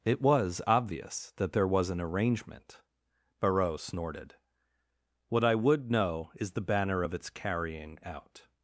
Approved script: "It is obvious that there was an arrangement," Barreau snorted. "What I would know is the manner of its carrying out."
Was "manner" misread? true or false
true